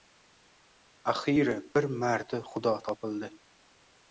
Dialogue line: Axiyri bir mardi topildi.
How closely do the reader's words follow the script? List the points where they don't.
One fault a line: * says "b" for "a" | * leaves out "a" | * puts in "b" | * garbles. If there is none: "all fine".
* puts in "xudo"